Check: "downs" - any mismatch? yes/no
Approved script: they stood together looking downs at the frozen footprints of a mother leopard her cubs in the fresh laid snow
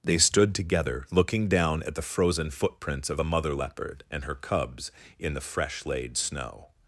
yes